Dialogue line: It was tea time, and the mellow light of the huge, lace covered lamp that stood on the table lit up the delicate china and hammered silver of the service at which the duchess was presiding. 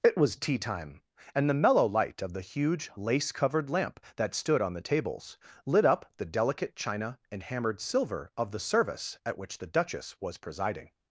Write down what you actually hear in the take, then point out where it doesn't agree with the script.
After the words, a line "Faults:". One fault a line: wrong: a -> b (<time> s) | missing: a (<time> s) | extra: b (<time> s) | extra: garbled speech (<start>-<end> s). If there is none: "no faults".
It was tea time, and the mellow light of the huge, lace covered lamp that stood on the tables lit up the delicate china and hammered silver of the service at which the duchess was presiding.
Faults:
wrong: table -> tables (4.8 s)